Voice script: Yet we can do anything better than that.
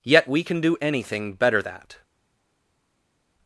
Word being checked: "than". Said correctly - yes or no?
no